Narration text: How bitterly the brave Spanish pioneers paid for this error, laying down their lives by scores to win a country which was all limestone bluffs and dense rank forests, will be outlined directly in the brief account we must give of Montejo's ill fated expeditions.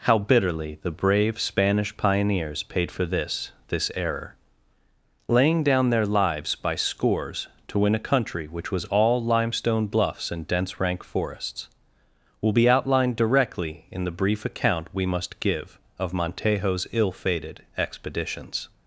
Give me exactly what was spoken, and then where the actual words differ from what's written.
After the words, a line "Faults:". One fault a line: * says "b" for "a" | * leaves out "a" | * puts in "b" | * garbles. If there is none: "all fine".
How bitterly the brave Spanish pioneers paid for this this error, laying down their lives by scores to win a country which was all limestone bluffs and dense rank forests, will be outlined directly in the brief account we must give of Montejo's ill fated expeditions.
Faults:
* puts in "this"